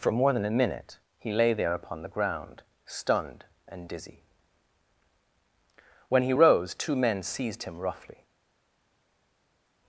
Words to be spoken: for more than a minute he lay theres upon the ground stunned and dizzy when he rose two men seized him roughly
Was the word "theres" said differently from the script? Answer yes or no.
yes